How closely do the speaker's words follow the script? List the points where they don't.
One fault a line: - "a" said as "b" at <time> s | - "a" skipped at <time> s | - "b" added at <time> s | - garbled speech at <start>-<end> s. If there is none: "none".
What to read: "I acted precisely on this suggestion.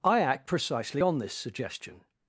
- "acted" said as "act" at 0.2 s